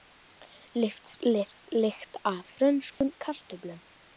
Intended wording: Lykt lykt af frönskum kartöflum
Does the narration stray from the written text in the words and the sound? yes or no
yes